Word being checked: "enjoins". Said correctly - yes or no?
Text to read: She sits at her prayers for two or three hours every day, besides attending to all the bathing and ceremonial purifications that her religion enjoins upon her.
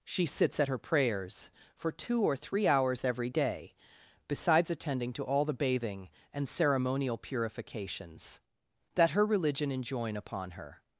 no